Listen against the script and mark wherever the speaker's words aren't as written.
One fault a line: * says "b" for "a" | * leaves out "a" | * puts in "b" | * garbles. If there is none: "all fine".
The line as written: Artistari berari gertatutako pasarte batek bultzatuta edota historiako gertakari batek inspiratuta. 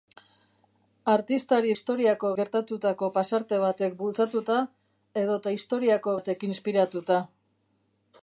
* says "historiako" for "berari"
* leaves out "gertakari"